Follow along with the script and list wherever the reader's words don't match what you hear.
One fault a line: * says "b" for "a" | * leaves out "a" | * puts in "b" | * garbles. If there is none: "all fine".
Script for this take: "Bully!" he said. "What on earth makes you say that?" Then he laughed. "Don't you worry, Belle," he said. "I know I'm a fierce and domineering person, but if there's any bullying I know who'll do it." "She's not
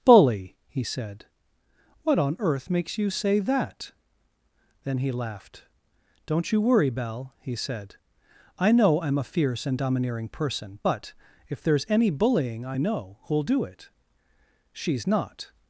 all fine